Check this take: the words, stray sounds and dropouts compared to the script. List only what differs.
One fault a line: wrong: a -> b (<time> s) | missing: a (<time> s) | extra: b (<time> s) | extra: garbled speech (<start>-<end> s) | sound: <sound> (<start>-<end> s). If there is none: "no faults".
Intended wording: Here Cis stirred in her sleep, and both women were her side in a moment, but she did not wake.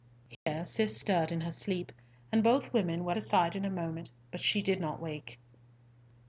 sound: dropout (0.3-0.5 s)